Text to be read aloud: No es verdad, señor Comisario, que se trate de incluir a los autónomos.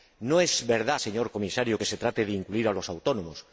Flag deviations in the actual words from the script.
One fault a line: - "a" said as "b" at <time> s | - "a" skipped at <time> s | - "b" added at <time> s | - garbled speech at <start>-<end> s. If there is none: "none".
none